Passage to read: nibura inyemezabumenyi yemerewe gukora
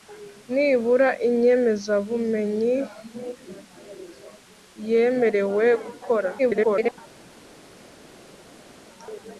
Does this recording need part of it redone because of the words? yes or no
yes